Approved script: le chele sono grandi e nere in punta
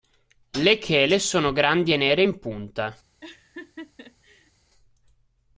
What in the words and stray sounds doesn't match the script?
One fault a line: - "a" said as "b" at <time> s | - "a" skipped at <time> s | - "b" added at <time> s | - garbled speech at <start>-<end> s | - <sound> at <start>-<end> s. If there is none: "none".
- laugh at 3.2-4.5 s